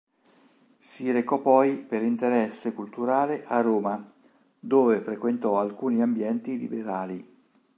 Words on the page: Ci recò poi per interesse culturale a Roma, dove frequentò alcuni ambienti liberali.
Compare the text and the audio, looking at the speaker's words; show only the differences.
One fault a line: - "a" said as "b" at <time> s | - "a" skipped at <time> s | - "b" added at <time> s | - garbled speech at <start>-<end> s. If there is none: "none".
- "Ci" said as "Si" at 0.8 s